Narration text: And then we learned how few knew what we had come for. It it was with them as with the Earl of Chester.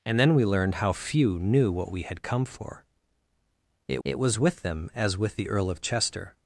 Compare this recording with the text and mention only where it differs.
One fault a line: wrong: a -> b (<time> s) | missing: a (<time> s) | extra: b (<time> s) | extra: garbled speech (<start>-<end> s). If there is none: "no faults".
no faults